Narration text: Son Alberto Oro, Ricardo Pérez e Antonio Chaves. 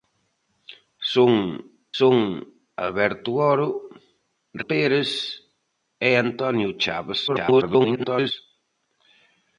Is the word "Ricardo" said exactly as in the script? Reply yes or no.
no